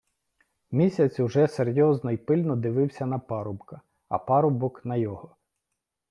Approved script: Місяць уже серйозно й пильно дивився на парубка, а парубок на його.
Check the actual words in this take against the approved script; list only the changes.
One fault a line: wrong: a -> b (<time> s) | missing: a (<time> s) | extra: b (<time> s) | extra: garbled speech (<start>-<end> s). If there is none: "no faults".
no faults